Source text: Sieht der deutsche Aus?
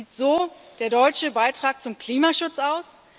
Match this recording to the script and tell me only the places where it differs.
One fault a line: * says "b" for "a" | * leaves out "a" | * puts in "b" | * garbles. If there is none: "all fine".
* puts in "so"
* puts in "Beitrag zum Klimaschutz"